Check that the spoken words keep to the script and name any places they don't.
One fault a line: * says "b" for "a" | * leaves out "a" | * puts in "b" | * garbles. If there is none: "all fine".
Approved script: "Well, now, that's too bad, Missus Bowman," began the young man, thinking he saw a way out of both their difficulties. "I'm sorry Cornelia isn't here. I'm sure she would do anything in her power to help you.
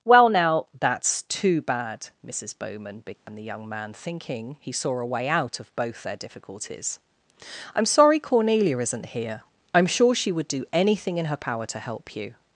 all fine